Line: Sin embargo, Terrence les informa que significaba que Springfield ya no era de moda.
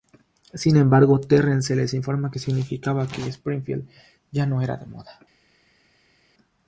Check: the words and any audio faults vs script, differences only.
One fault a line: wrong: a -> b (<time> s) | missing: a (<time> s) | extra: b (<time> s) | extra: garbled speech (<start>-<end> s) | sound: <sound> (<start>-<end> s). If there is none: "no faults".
no faults